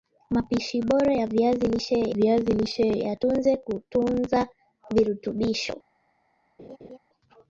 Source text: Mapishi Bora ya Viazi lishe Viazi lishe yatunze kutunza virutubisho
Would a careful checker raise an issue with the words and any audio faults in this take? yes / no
yes